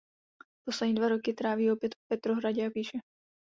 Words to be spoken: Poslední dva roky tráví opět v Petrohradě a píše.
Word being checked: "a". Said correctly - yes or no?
yes